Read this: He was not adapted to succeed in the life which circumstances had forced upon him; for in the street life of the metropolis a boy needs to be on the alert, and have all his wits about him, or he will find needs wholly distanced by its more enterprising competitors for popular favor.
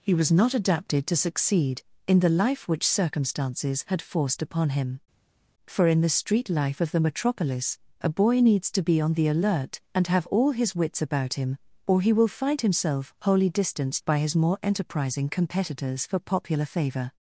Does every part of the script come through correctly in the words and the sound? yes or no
no